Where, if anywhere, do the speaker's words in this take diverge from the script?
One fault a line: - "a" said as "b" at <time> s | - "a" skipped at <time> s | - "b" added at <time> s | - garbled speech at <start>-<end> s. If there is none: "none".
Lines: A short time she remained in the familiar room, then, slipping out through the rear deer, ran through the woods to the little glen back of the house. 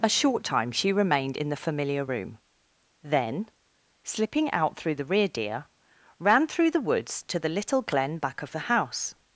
none